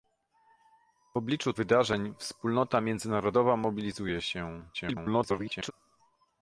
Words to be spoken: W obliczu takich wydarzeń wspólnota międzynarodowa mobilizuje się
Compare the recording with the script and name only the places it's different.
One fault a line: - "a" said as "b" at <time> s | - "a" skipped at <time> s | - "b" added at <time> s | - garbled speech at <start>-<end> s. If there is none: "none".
- "takich" skipped at 1.5 s
- garbled speech at 4.7-5.7 s